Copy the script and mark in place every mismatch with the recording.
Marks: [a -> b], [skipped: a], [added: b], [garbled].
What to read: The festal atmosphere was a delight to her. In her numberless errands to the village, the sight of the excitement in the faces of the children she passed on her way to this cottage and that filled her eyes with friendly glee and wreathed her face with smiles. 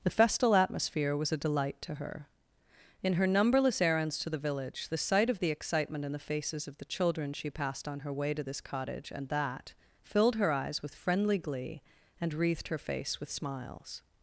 The festal atmosphere was a delight to her. In her numberless errands to the village, the sight of the excitement in the faces of the children she passed on her way to this cottage and that filled her eyes with friendly glee and wreathed her face with smiles.